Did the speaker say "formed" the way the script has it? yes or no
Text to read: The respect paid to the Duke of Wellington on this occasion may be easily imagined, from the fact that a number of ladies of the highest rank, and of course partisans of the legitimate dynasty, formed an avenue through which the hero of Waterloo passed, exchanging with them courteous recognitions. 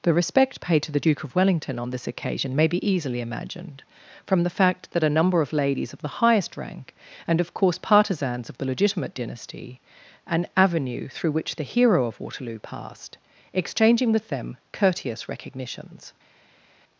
no